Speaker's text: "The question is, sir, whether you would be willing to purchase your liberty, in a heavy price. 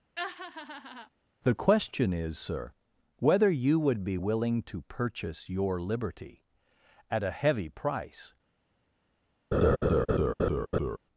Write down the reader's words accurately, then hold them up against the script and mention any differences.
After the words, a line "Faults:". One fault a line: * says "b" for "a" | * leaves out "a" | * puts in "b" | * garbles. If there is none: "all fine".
"The question is, sir, whether you would be willing to purchase your liberty, at a heavy price.
Faults:
* says "at" for "in"